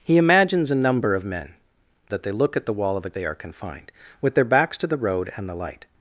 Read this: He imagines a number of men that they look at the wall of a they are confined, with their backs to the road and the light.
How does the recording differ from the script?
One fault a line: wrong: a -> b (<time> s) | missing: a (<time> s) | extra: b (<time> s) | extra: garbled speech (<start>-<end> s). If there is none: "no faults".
no faults